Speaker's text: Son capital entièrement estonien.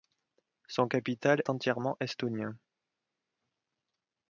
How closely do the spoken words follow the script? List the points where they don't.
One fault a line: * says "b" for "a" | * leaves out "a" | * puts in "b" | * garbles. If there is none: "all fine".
all fine